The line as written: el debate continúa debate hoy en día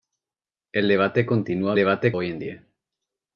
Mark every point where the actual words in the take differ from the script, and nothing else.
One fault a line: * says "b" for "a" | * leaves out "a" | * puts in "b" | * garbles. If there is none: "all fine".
all fine